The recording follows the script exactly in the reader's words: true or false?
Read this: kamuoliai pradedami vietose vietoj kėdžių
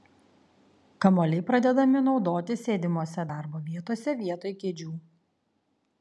false